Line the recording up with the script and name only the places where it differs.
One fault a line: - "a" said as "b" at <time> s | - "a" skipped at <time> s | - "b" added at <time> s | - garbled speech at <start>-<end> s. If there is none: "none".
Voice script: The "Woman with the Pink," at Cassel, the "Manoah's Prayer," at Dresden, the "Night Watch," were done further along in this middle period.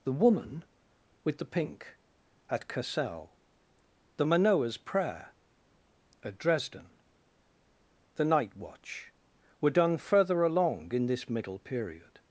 none